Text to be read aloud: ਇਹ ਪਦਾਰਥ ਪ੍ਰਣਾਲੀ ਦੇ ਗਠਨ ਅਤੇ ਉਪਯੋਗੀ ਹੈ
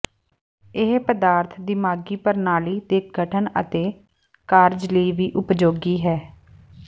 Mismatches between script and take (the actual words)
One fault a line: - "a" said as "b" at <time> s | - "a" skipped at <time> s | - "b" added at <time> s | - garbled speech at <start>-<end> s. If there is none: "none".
- "ਦਿਮਾਗੀ" added at 1.6 s
- "ਕਾਰਜ ਲਈ ਵੀ" added at 4.5 s